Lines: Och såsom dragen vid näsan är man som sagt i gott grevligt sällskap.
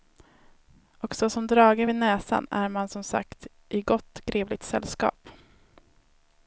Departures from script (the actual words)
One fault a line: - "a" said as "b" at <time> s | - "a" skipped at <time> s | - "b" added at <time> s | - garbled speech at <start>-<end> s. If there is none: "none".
none